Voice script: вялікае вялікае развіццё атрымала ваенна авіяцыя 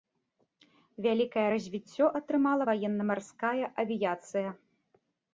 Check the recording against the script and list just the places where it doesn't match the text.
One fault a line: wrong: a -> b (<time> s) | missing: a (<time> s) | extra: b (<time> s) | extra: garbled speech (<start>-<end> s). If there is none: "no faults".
missing: вялікае (1.4 s)
extra: марская (3.1 s)